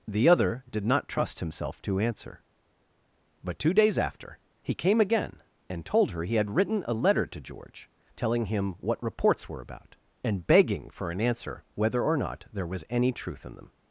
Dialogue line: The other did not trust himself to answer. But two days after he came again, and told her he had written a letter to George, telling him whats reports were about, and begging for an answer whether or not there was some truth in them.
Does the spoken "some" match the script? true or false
false